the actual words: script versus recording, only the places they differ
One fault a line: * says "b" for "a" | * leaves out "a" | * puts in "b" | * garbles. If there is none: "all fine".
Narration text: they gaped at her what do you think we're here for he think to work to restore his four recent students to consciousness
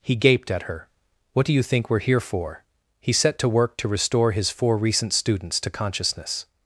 * says "he" for "they"
* says "set" for "think"